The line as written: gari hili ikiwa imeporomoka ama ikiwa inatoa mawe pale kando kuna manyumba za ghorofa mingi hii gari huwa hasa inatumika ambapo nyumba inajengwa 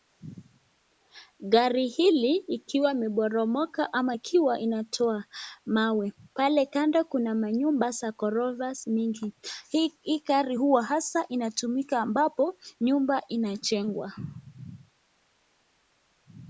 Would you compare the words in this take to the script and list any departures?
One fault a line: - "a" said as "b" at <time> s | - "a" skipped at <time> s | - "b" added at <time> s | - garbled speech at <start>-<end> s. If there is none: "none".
none